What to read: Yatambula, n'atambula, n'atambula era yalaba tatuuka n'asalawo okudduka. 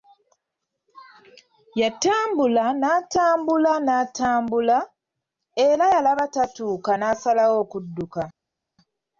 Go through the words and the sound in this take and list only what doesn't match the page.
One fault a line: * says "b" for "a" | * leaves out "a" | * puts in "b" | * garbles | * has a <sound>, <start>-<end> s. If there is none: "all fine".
all fine